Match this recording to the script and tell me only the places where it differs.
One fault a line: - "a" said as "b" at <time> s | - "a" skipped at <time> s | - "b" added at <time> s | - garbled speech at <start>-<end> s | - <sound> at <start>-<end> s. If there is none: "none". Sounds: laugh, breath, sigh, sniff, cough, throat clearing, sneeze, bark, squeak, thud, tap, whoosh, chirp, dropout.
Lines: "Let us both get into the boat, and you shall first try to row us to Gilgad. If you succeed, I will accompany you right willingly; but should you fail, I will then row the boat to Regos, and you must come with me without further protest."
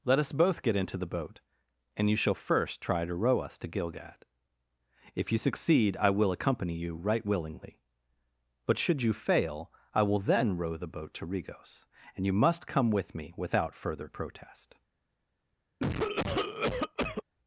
- cough at 15.8-17.2 s